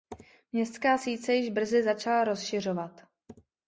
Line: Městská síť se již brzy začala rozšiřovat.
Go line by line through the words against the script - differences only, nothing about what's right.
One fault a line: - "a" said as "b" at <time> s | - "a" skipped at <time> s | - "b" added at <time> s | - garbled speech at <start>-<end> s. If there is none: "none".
none